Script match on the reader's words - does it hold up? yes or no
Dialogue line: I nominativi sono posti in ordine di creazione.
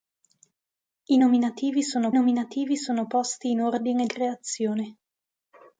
no